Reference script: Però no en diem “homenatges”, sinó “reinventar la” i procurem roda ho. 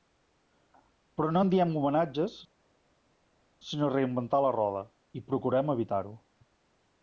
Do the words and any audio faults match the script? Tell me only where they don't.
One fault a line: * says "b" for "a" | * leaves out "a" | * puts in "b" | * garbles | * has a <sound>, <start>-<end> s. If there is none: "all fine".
* puts in "roda"
* says "evitar" for "roda"